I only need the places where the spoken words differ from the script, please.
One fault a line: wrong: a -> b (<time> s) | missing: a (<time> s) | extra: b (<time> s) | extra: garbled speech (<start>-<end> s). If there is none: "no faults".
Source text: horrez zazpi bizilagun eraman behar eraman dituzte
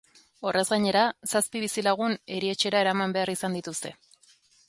extra: gainera (0.7 s)
extra: erietxera (2.4 s)
wrong: eraman -> izan (3.4 s)